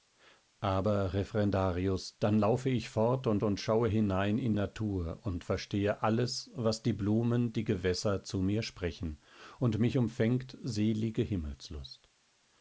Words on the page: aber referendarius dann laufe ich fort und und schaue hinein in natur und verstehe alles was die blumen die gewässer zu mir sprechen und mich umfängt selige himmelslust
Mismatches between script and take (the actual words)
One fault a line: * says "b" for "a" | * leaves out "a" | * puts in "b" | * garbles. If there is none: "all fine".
all fine